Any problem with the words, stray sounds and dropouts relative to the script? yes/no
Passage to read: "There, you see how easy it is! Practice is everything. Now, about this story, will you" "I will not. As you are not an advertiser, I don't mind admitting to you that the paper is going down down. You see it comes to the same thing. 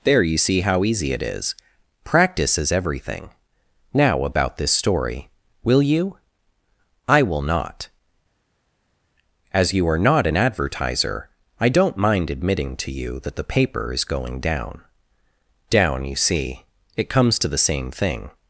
no